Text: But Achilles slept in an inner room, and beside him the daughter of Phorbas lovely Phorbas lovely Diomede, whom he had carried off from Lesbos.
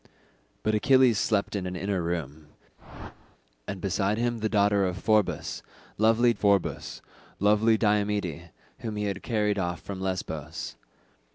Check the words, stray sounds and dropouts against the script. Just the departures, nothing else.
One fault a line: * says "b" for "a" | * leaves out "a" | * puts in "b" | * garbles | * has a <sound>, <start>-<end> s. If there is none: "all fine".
* has a whoosh, 2.8-3.4 s